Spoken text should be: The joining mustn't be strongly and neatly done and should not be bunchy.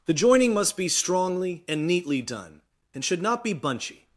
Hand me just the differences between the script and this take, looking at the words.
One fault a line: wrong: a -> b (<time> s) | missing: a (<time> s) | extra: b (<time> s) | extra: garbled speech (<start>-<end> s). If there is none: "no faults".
wrong: mustn't -> must (0.5 s)